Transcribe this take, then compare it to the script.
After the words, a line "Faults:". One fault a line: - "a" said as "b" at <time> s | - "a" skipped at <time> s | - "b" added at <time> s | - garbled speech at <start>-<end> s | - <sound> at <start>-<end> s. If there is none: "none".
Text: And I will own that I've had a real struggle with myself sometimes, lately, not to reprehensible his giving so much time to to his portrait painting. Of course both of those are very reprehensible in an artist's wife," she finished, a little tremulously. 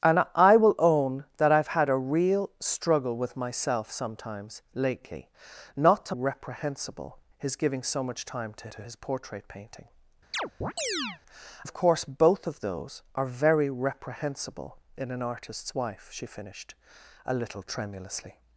And I will own that I've had a real struggle with myself sometimes, lately, not to reprehensible his giving so much time to to his portrait painting. Of course both of those are very reprehensible in an artist's wife," she finished, a little tremulously.
Faults:
- chirp at 10.3-11.2 s